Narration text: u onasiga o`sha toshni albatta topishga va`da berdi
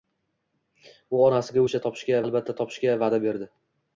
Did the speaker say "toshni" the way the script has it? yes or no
no